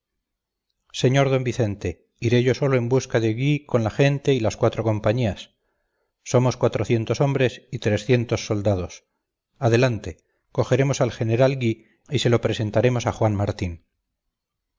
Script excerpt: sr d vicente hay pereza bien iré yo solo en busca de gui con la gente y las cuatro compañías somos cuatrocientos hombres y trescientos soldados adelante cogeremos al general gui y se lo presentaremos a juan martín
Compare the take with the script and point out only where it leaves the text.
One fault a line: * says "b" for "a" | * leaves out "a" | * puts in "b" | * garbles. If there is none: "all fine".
* leaves out "hay pereza bien"